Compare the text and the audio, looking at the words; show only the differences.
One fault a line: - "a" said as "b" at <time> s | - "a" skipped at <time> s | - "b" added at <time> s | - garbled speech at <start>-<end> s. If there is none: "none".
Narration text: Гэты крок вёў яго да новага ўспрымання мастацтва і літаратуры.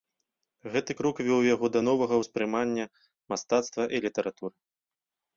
none